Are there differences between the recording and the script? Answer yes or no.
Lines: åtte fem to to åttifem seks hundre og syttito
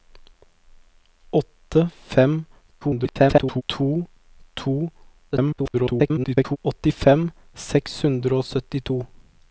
yes